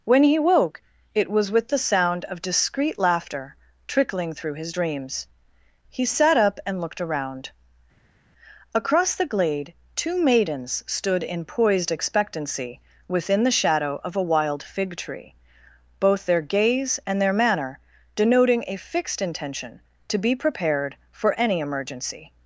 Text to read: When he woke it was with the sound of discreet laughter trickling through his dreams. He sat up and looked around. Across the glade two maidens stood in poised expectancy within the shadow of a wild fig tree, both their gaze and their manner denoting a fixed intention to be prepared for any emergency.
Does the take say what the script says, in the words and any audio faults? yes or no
yes